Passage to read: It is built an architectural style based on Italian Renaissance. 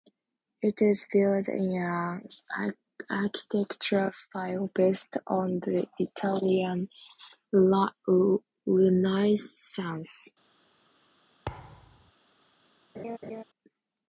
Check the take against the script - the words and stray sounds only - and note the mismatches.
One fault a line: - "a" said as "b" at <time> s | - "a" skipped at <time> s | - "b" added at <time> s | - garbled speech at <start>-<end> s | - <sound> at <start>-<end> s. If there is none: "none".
- "in" added at 1.5 s
- "the" added at 5.6 s
- thud at 11.5-12.1 s
- laugh at 12.9-13.4 s